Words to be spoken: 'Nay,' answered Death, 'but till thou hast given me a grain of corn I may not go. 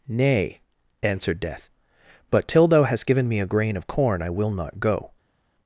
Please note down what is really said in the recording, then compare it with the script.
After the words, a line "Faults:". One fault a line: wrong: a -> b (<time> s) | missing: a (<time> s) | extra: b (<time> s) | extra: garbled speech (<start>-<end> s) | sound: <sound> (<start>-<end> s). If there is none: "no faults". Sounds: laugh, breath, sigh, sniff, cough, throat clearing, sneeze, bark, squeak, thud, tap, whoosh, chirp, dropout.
'Nay,' answered Death, 'but till thou hast given me a grain of corn I will not go.
Faults:
wrong: may -> will (4.3 s)